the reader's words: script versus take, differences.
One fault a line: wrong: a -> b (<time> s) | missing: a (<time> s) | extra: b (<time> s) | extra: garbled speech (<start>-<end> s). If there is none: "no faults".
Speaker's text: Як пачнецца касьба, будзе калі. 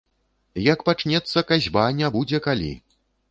extra: не (2.0 s)